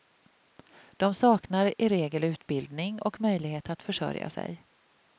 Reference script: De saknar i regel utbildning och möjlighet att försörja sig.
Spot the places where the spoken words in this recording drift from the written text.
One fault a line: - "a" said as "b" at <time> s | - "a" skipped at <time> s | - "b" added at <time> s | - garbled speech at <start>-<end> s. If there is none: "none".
none